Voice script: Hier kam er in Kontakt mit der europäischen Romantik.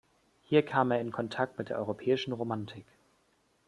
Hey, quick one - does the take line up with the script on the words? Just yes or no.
yes